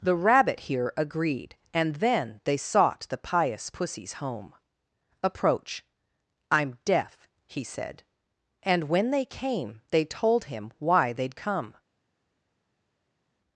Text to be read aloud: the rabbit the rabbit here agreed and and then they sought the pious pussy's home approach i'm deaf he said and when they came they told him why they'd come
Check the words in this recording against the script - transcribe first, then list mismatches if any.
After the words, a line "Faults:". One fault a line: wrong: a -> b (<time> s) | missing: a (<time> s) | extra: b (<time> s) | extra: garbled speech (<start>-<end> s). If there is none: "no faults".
the rabbit here agreed and then they sought the pious pussy's home approach i'm deaf he said and when they came they told him why they'd come
Faults:
missing: the rabbit (0.6 s)
missing: and (1.9 s)